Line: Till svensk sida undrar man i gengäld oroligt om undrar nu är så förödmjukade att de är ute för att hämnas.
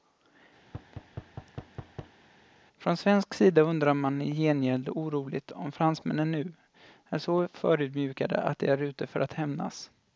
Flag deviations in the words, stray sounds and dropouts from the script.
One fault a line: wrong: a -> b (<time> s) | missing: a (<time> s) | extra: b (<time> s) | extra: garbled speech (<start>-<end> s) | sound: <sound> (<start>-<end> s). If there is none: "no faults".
sound: thud (0.6-2.2 s)
wrong: Till -> Från (2.8 s)
wrong: undrar -> fransmännen (5.7 s)